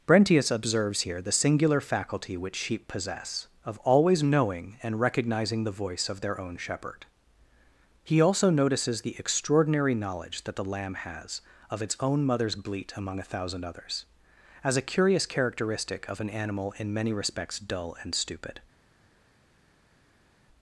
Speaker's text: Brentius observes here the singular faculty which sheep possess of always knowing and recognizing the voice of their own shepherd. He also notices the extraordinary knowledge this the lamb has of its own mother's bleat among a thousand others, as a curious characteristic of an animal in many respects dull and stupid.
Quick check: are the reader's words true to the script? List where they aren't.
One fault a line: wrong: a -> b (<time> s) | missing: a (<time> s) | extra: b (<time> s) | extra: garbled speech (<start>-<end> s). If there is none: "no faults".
wrong: this -> that (10.4 s)